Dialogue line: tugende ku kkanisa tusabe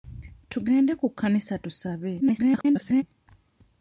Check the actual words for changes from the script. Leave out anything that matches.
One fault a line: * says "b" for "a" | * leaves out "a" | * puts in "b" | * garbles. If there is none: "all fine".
* garbles